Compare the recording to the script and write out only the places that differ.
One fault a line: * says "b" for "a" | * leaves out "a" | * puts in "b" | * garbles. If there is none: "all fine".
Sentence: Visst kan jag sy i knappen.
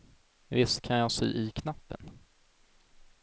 all fine